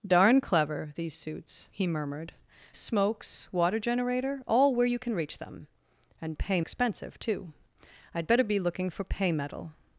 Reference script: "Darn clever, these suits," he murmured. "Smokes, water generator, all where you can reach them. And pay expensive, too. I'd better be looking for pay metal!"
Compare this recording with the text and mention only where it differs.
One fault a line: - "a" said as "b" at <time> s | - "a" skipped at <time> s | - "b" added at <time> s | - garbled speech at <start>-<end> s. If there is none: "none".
none